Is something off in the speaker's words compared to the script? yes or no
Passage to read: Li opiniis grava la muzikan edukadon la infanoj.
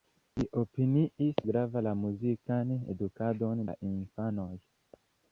no